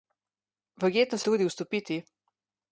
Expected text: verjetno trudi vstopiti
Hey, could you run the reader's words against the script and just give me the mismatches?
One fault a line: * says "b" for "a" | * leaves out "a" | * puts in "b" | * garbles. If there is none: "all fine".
all fine